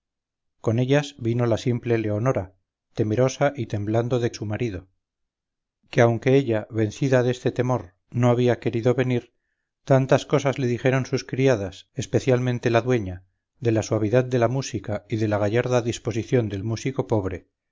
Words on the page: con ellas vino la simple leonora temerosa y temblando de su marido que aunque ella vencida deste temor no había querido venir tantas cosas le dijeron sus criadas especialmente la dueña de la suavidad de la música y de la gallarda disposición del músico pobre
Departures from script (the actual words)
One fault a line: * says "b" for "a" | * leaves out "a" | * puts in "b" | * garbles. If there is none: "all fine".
all fine